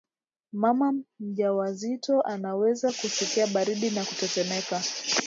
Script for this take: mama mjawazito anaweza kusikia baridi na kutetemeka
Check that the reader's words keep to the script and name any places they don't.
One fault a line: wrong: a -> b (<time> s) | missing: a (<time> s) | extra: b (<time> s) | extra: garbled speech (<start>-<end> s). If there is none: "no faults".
no faults